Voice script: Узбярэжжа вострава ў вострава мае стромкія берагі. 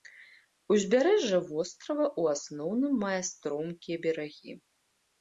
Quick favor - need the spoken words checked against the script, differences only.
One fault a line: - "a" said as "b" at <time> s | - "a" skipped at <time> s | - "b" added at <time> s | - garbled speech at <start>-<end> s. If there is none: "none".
- "вострава" said as "асноўным" at 2.4 s